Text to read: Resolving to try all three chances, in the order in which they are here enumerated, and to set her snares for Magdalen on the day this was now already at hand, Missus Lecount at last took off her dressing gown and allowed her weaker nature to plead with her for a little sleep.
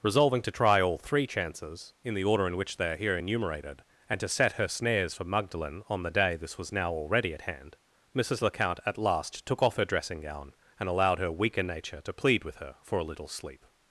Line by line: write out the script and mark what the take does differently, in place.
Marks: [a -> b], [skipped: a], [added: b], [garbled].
Resolving to try all three chances, in the order in which they are here enumerated, and to set her snares for Magdalen on the day this was now already at hand, Missus Lecount at last took off her dressing gown and allowed her weaker nature to plead with her for a little sleep.